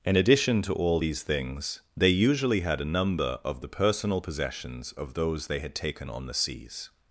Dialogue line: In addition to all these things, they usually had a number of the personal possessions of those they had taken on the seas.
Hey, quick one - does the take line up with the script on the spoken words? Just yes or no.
yes